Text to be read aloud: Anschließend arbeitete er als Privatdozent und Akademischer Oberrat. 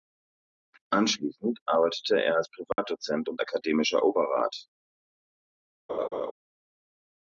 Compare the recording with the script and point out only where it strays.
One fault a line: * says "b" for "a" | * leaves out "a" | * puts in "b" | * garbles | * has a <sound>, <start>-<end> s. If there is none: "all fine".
* has a dropout, 2.7-2.8 s
* has a laugh, 5.9-6.3 s